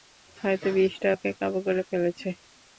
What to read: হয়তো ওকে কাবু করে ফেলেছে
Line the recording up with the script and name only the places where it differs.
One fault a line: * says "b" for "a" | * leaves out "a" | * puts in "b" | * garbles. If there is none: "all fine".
* puts in "বিষটা"